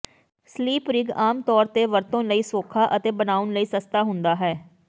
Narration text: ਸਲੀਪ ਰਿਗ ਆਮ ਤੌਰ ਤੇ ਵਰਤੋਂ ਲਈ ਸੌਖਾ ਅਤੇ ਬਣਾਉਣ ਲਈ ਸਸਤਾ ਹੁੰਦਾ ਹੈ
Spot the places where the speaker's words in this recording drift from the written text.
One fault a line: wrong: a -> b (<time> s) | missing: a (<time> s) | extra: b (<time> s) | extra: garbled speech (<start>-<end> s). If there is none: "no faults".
no faults